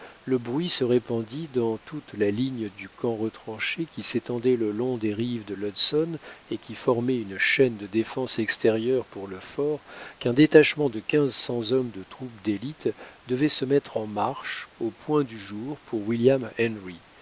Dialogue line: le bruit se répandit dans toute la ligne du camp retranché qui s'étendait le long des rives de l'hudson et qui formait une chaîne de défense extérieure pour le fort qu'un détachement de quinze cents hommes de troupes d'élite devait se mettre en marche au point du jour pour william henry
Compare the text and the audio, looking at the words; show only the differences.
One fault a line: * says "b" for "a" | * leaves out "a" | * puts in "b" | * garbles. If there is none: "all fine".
all fine